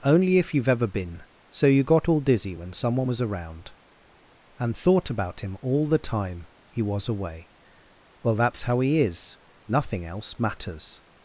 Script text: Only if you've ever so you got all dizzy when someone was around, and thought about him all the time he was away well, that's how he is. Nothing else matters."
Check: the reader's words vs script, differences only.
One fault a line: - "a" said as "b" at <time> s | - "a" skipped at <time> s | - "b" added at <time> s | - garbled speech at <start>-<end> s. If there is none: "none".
- "been" added at 0.9 s